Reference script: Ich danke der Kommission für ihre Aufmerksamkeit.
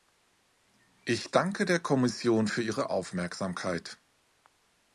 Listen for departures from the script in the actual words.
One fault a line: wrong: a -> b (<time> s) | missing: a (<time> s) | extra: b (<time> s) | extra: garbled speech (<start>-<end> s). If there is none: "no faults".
no faults